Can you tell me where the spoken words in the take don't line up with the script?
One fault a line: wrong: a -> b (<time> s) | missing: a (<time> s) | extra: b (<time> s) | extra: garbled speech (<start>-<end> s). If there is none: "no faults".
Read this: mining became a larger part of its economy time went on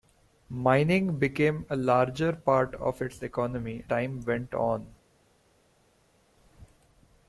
no faults